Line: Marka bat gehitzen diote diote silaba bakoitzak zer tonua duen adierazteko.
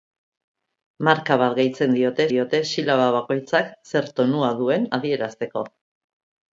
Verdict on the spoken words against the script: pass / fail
pass